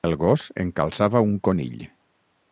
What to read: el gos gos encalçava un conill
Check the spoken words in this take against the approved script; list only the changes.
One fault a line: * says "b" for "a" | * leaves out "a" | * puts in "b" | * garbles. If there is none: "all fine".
* leaves out "gos"